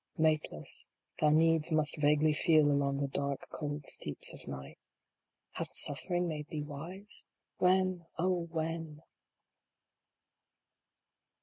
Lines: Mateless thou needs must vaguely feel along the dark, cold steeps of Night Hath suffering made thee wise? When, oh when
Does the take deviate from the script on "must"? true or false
false